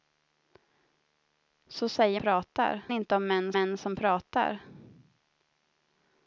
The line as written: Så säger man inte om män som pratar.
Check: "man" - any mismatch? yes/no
yes